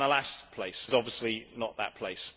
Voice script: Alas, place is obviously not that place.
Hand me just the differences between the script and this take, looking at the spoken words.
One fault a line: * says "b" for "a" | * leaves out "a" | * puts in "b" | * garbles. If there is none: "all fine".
all fine